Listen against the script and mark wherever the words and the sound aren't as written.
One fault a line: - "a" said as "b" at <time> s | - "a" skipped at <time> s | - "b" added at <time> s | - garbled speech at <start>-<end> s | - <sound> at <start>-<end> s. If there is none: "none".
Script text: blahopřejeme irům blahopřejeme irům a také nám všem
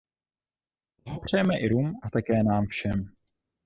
- "blahopřejeme irům" skipped at 2.0 s